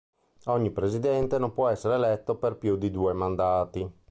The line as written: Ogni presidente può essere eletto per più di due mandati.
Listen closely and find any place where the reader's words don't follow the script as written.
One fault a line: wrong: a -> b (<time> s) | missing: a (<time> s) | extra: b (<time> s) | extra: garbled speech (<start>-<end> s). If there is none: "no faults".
extra: non (1.4 s)